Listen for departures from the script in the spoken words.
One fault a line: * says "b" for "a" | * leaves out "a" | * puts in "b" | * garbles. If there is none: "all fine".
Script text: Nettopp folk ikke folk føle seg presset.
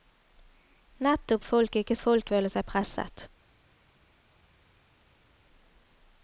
all fine